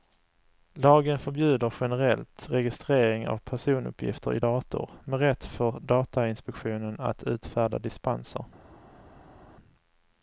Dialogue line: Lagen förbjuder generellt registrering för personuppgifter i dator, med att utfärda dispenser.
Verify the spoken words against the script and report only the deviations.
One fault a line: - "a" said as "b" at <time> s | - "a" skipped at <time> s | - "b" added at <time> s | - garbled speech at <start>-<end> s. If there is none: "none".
- "för" said as "av" at 3.3 s
- "rätt för datainspektionen" added at 5.2 s